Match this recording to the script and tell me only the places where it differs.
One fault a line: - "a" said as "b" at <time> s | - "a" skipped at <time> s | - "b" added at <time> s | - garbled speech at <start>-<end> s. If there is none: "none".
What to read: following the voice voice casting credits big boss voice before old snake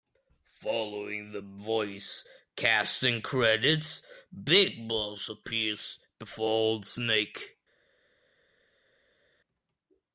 - "voice" skipped at 2.3 s
- "voice" said as "appears" at 5.3 s